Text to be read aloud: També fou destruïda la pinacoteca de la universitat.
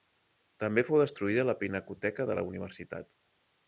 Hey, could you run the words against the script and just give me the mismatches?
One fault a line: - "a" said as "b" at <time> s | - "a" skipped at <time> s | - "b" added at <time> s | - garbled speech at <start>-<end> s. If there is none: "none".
none